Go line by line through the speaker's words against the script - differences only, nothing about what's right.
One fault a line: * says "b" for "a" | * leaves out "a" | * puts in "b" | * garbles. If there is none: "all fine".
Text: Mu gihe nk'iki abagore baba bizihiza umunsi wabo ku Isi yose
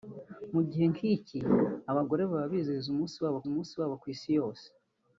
* puts in "umunsi wabo"